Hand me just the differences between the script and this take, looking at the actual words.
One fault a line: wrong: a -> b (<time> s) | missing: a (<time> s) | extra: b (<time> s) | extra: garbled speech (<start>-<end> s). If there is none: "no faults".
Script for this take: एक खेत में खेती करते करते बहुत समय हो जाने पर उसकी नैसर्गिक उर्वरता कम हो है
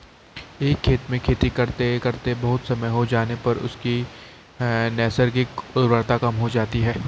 extra: जाती (6.5 s)